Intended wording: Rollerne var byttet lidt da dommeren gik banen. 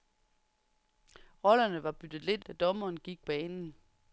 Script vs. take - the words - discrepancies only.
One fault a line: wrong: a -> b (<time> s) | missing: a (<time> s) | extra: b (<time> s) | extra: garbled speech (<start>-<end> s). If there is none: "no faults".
no faults